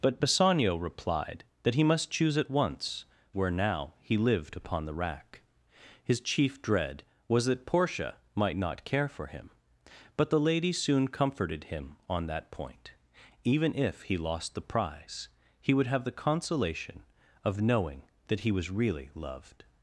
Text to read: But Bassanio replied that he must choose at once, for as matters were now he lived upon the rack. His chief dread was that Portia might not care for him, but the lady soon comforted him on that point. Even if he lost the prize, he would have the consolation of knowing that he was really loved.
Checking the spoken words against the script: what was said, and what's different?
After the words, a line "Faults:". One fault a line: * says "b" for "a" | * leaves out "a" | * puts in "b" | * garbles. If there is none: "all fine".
But Bassanio replied that he must choose at once, were now he lived upon the rack. His chief dread was that Portia might not care for him, but the lady soon comforted him on that point. Even if he lost the prize, he would have the consolation of knowing that he was really loved.
Faults:
* leaves out "for as matters"